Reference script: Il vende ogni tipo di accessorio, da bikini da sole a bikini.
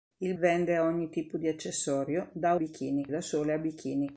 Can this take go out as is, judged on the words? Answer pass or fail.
pass